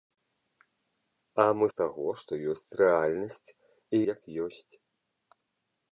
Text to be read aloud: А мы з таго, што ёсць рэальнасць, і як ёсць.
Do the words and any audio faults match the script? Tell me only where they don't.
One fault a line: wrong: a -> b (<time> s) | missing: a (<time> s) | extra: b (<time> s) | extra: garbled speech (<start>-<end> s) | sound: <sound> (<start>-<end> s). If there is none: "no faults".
no faults